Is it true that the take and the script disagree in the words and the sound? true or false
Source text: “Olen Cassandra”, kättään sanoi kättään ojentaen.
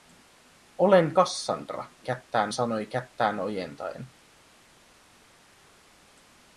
false